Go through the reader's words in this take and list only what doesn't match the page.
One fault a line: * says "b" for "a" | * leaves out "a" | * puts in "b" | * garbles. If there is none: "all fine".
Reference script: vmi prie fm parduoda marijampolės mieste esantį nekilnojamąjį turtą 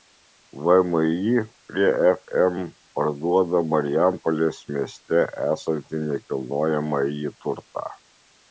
all fine